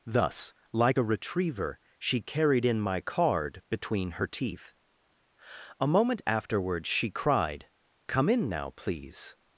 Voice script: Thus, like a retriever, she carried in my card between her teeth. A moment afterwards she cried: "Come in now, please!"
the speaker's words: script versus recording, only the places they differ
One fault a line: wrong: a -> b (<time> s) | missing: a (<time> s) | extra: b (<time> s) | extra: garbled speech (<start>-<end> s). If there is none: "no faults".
no faults